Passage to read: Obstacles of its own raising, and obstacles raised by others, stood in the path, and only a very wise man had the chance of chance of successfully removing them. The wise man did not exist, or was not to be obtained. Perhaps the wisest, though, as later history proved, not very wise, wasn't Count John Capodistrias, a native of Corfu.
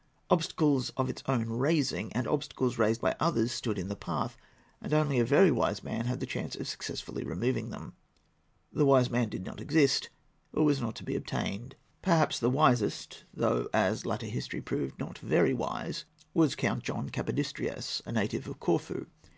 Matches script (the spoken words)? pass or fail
fail